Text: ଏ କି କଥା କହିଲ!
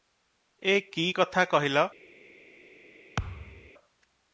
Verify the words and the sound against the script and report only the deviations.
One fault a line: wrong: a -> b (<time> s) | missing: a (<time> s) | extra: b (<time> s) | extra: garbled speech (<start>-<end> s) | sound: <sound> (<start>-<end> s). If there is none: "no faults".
sound: thud (3.2-3.7 s)